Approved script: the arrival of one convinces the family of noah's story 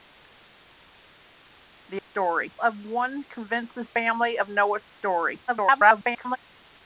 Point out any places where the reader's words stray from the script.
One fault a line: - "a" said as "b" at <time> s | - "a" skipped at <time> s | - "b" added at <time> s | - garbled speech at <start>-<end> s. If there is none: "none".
- "arrival" said as "story" at 2.0 s
- "the" skipped at 3.9 s
- garbled speech at 5.5-6.4 s